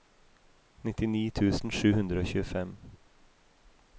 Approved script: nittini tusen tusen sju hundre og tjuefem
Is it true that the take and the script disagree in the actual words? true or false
true